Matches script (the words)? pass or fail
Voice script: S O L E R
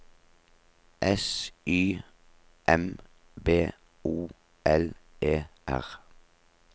fail